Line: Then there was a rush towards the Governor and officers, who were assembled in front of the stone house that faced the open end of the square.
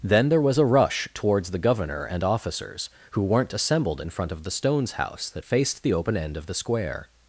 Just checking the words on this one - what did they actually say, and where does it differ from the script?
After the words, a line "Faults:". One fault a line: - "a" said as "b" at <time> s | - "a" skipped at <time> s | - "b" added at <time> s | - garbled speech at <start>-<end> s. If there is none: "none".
Then there was a rush towards the Governor and officers, who weren't assembled in front of the stones house that faced the open end of the square.
Faults:
- "were" said as "weren't" at 3.2 s
- "stone" said as "stones" at 4.5 s